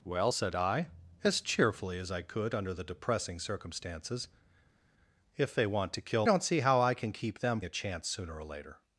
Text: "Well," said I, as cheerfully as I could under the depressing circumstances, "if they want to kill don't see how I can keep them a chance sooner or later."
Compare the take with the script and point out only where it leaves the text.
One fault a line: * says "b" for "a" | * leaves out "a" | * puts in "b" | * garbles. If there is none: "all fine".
all fine